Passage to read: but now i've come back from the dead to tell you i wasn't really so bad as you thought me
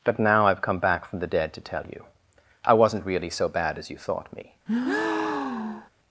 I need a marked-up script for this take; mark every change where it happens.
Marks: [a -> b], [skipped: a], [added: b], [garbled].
but now i've come back from the dead to tell you i wasn't really so bad as you thought me